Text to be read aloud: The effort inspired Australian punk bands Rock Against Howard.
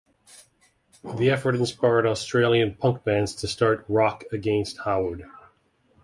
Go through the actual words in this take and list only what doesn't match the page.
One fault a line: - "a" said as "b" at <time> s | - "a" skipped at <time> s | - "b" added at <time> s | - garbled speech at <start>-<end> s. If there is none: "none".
- "to start" added at 3.4 s